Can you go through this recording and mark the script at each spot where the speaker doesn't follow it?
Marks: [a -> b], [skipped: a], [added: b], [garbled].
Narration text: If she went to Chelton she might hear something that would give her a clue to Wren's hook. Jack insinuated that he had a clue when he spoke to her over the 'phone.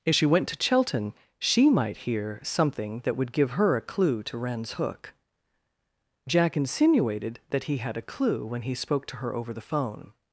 If she went to Chelton she might hear something that would give her a clue to Wren's hook. Jack insinuated that he had a clue when he spoke to her over the 'phone.